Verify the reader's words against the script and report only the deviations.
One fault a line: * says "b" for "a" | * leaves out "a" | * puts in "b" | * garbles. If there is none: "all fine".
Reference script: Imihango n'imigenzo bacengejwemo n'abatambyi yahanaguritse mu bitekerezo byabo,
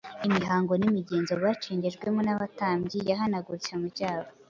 * leaves out "bitekerezo"